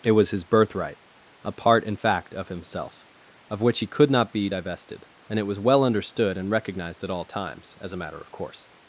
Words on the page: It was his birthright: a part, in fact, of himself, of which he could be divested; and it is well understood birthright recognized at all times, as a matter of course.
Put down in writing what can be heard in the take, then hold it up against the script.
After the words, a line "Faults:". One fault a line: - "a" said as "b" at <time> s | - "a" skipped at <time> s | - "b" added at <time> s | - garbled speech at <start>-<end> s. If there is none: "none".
It was his birthright: a part, in fact, of himself, of which he could not be divested; and it was well understood and recognized at all times, as a matter of course.
Faults:
- "not" added at 4.1 s
- "is" said as "was" at 5.4 s
- "birthright" said as "and" at 6.4 s